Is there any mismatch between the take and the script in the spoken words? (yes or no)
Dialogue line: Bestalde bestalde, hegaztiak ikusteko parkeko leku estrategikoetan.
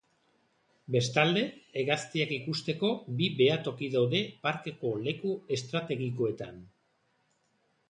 yes